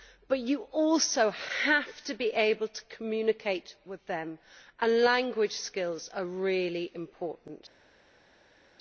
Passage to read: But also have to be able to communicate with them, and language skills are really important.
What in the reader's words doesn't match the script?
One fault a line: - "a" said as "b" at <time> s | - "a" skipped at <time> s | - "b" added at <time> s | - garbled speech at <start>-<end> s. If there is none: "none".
- "you" added at 0.4 s